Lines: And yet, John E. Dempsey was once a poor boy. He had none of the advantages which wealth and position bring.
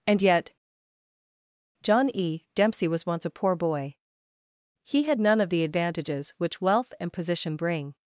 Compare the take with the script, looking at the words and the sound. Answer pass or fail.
pass